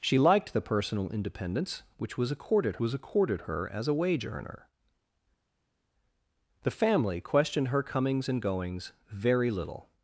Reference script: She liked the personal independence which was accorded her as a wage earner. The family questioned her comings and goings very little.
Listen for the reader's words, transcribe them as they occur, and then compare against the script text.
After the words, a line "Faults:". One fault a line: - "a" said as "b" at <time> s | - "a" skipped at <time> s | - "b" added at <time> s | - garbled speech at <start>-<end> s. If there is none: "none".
She liked the personal independence which was accorded was accorded her as a wage earner. The family questioned her comings and goings very little.
Faults:
- "was accorded" added at 2.8 s